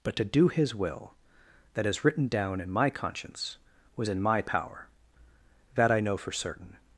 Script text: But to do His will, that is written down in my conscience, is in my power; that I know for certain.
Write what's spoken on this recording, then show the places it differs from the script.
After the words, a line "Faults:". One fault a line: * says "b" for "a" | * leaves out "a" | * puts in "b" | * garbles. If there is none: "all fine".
But to do His will, that is written down in my conscience, was in my power; that I know for certain.
Faults:
* says "was" for "is"